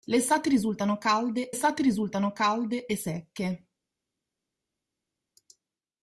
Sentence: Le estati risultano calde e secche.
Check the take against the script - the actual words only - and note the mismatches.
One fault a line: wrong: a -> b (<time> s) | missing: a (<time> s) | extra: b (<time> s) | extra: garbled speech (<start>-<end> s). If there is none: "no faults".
extra: estati risultano calde (1.5 s)